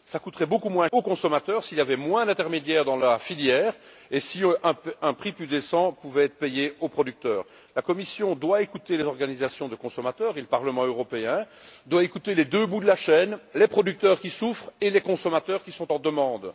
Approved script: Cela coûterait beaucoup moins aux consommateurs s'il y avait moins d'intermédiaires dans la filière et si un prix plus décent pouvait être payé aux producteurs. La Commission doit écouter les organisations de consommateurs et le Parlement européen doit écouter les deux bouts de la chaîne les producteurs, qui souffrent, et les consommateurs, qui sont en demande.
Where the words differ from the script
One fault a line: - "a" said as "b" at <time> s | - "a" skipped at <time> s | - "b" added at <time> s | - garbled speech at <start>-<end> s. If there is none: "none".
none